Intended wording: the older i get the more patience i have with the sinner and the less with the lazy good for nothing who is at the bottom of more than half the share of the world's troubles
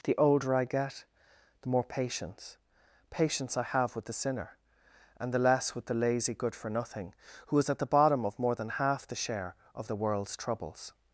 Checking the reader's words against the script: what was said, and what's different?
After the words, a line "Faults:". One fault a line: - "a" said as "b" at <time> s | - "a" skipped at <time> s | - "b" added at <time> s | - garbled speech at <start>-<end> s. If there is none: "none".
the older i get the more patience patience i have with the sinner and the less with the lazy good for nothing who is at the bottom of more than half the share of the world's troubles
Faults:
- "patience" added at 3.1 s